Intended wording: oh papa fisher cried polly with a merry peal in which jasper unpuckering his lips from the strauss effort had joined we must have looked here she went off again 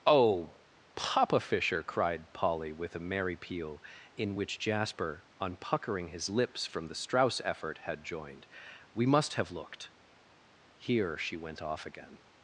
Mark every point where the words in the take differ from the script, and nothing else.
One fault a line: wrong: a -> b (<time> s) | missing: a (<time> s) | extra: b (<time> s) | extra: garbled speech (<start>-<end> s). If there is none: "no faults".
no faults